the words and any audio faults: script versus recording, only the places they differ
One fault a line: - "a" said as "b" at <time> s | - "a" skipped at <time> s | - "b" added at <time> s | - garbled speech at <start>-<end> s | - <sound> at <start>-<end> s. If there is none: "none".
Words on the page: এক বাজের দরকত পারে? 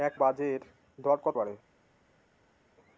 none